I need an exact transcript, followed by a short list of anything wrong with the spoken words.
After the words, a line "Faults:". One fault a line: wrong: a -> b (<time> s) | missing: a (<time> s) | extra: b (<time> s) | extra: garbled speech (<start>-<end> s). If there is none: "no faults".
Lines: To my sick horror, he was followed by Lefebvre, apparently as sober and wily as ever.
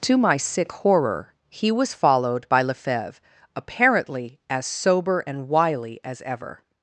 To my sick horror, he was followed by Lefebvre, apparently as sober and wily as ever.
Faults:
no faults